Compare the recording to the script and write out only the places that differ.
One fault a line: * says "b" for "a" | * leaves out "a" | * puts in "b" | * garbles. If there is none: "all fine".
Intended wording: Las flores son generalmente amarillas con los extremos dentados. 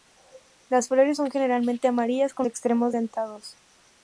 * leaves out "los"